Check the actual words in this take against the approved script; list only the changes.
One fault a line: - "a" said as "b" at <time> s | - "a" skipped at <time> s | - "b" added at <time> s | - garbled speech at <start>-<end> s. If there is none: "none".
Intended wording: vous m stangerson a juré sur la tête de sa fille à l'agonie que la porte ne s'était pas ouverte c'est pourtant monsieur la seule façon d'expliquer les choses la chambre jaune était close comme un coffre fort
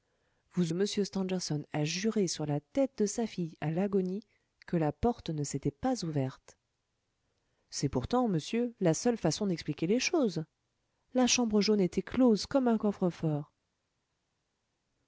none